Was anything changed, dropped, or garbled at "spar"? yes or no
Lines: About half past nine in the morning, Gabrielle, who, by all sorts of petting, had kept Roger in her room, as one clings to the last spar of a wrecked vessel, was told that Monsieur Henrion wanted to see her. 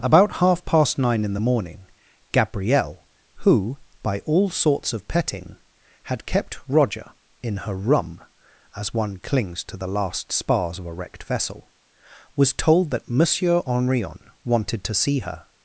yes